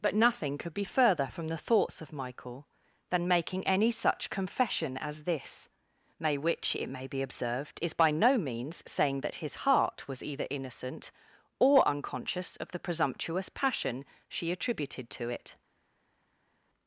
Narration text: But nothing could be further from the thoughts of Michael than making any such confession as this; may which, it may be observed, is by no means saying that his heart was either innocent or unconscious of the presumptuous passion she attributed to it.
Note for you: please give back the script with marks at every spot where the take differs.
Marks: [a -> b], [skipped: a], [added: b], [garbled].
But nothing could be further from the thoughts of Michael than making any such confession as this; may which, it may be observed, is by no means saying that his heart was either innocent or unconscious of the presumptuous passion she attributed to it.